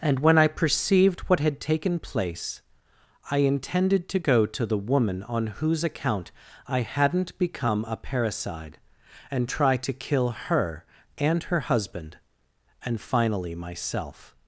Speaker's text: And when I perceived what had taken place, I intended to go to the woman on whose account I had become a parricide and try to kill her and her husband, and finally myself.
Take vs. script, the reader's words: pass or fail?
fail